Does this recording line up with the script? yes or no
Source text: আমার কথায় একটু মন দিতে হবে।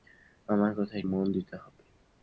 no